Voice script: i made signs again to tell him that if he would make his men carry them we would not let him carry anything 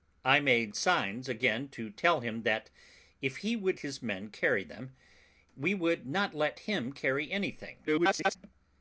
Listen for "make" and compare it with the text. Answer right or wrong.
wrong